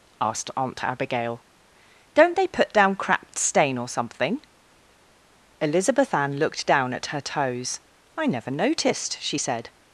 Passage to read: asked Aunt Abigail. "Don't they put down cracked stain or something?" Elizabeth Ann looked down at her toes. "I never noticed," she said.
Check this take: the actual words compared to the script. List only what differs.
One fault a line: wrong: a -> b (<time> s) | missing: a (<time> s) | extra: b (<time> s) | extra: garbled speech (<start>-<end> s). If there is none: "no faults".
no faults